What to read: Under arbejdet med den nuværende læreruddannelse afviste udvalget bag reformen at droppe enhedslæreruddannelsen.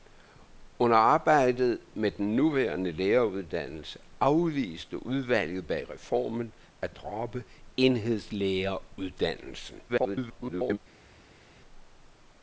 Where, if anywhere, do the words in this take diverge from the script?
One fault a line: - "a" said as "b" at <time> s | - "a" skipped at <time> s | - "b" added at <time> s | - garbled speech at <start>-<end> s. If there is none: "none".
- garbled speech at 9.9-10.8 s